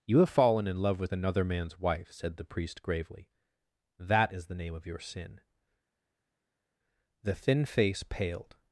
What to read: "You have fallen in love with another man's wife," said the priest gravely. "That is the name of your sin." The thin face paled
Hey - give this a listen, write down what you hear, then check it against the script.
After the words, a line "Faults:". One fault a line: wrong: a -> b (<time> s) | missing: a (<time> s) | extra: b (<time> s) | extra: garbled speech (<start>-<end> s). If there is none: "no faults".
"You have fallen in love with another man's wife," said the priest gravely. "That is the name of your sin." The thin face paled
Faults:
no faults